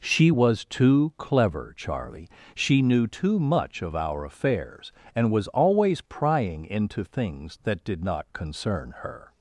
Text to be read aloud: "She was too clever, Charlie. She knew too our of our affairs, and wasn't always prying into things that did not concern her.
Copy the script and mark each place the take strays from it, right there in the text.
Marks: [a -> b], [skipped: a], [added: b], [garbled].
"She was too clever, Charlie. She knew too [our -> much] of our affairs, and [wasn't -> was] always prying into things that did not concern her.